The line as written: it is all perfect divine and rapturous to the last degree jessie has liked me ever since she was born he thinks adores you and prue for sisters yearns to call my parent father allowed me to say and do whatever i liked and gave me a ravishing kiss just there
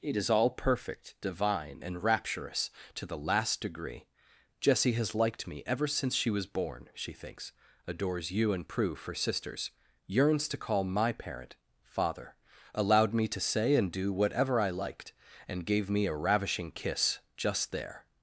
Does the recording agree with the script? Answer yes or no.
no